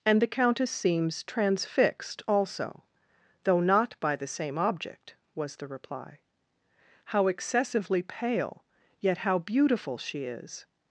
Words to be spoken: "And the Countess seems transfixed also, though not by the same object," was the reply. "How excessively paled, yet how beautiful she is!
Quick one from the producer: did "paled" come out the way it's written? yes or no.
no